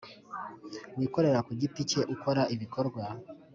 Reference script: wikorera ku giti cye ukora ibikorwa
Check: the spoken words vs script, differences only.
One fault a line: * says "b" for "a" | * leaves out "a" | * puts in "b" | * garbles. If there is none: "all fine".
all fine